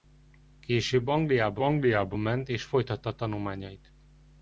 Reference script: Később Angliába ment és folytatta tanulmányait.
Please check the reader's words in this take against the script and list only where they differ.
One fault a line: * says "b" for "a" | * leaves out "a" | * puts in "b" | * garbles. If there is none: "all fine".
* puts in "Angliába"